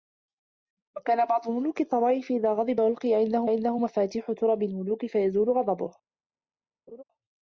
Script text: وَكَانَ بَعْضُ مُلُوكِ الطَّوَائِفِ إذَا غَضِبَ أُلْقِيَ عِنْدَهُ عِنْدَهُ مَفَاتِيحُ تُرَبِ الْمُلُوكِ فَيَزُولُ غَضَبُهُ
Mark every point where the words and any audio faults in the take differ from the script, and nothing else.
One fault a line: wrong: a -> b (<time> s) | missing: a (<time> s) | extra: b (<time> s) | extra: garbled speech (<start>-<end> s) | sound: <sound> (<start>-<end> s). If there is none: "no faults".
sound: laugh (6.9-7.0 s)